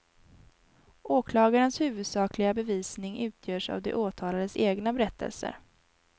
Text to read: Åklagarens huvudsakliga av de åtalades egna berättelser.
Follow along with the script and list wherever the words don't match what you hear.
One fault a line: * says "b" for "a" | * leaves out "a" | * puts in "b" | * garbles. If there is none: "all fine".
* puts in "bevisning utgörs"